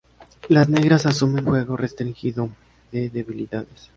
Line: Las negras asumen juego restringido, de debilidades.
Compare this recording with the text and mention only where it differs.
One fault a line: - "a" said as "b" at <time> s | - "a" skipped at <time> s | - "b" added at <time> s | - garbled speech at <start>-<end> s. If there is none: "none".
none